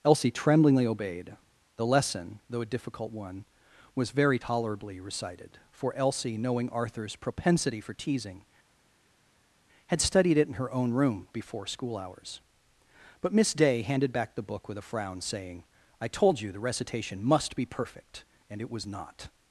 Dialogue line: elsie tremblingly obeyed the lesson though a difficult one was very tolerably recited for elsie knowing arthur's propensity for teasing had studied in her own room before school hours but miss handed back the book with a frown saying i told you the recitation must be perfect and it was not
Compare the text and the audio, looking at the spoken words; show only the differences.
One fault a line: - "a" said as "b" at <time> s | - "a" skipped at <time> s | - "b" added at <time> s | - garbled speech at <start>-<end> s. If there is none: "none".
- "it" added at 10.4 s
- "day" added at 13.5 s